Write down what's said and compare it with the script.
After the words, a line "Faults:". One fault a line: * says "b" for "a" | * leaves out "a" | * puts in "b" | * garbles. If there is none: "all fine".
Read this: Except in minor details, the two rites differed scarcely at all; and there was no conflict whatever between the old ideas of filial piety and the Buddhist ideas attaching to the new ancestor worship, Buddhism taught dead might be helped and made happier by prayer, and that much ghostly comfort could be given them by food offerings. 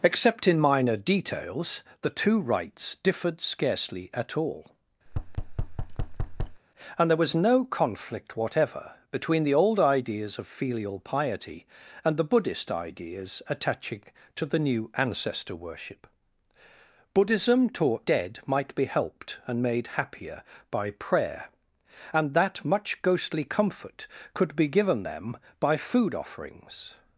Except in minor details, the two rites differed scarcely at all; and there was no conflict whatever between the old ideas of filial piety and the Buddhist ideas attaching to the new ancestor worship, Buddhism taught dead might be helped and made happier by prayer, and that much ghostly comfort could be given them by food offerings.
Faults:
all fine